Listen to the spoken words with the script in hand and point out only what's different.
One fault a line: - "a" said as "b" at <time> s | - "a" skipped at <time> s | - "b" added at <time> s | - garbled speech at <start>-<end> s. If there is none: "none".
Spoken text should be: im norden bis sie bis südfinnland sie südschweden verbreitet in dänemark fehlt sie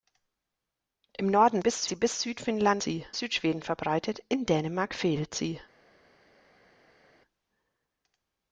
none